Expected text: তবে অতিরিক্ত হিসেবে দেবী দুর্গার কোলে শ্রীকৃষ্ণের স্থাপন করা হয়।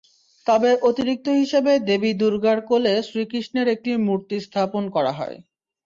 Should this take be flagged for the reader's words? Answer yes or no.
yes